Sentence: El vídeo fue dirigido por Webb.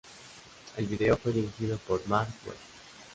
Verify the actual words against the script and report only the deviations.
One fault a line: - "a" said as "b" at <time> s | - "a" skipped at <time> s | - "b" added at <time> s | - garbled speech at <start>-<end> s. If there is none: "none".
- "Marc" added at 2.1 s